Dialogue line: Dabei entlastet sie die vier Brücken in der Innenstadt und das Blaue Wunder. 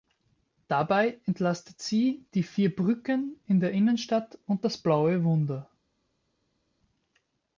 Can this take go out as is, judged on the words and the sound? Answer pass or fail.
pass